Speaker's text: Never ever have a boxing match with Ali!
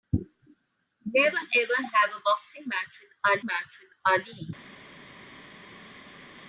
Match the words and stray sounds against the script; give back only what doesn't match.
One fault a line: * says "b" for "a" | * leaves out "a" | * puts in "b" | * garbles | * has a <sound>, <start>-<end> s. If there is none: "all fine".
* puts in "match with"